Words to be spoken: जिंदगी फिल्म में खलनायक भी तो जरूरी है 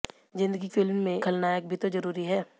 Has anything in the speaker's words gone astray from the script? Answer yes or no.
no